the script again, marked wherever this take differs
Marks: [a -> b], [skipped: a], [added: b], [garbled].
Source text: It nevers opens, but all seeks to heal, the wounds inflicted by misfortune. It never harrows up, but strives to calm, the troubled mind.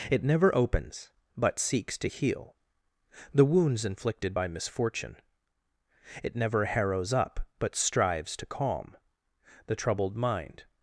It [nevers -> never] opens, but [skipped: all] seeks to heal, the wounds inflicted by misfortune. It never harrows up, but strives to calm, the troubled mind.